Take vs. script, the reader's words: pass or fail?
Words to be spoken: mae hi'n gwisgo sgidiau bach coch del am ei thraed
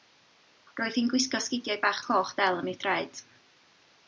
fail